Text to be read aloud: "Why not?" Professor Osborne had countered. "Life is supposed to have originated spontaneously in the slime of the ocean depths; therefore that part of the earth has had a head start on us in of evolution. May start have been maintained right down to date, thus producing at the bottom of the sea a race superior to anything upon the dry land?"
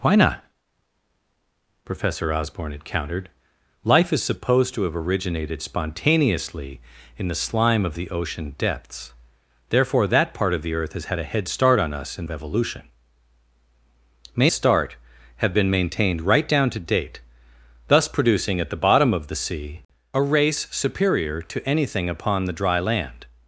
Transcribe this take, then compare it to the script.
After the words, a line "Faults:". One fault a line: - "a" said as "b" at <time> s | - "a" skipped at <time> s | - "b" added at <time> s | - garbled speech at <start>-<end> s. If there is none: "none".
"Why not?" Professor Osborne had countered. "Life is supposed to have originated spontaneously in the slime of the ocean depths; therefore that part of the earth has had a head start on us in of evolution. May start have been maintained right down to date, thus producing at the bottom of the sea a race superior to anything upon the dry land?"
Faults:
none